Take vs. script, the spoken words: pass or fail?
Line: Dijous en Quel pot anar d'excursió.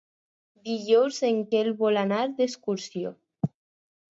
fail